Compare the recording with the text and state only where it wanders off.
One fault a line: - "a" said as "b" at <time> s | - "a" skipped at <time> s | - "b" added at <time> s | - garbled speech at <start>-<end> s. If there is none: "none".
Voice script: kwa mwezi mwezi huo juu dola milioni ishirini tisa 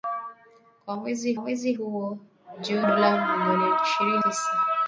none